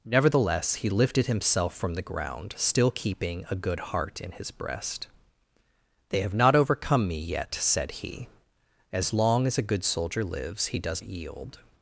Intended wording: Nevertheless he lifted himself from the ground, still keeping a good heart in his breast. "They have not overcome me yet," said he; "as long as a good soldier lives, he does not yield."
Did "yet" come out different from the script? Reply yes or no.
no